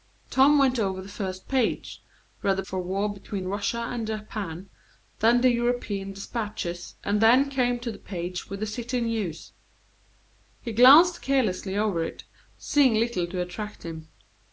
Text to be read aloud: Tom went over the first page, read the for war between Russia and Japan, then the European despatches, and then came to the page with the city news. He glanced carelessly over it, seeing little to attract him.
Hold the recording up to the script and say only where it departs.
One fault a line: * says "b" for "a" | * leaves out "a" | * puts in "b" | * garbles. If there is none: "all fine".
all fine